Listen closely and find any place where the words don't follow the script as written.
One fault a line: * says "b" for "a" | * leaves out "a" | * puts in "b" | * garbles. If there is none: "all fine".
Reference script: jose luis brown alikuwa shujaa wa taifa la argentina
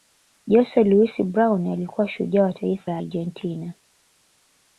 all fine